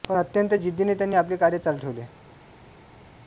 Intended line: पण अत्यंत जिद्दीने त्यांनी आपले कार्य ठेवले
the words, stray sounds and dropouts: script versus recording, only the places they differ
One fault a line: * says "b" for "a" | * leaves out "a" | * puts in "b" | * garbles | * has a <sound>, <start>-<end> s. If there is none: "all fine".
* puts in "चालू"